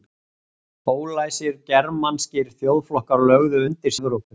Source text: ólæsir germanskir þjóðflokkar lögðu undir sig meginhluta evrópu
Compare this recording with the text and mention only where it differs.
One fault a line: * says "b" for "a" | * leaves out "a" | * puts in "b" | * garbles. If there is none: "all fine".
* leaves out "sig meginhluta"